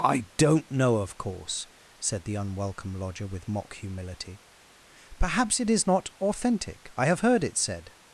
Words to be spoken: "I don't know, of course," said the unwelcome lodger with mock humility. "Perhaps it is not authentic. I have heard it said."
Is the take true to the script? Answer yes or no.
yes